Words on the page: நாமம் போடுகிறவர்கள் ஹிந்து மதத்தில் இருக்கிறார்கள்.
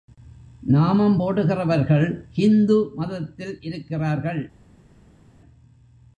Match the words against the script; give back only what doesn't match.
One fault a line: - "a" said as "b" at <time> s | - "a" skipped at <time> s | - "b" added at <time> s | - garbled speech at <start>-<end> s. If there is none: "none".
none